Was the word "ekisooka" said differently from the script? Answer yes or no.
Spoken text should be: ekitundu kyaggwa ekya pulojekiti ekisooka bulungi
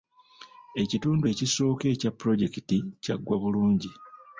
yes